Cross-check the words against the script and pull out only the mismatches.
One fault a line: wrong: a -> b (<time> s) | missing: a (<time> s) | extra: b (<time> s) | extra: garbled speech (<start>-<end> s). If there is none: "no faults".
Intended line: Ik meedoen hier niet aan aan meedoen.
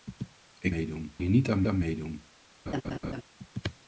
no faults